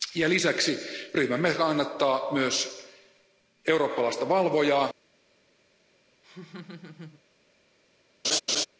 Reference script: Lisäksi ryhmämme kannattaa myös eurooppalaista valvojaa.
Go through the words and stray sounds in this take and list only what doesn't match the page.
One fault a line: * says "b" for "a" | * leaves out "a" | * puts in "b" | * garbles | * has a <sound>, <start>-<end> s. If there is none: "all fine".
* has a laugh, 6.2-7.2 s
* has a laugh, 8.2-8.7 s